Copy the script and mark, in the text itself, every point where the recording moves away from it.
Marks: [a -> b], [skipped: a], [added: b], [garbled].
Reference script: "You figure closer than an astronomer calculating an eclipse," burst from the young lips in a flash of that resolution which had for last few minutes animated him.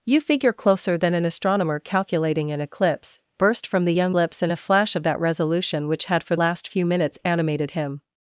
"You figure closer than an astronomer calculating an eclipse," burst from the young lips in a flash of that resolution which had for last few minutes animated him.